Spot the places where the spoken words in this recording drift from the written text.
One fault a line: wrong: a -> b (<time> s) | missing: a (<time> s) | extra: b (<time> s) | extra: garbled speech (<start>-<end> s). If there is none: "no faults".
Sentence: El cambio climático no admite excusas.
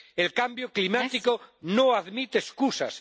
no faults